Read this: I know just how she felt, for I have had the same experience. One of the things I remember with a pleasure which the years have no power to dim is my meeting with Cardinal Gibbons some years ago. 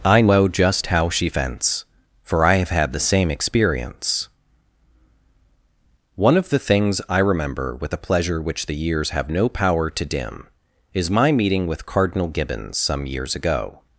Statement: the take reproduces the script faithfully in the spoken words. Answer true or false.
false